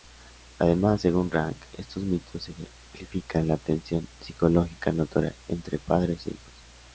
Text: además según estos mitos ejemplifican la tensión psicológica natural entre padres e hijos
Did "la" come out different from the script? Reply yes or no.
no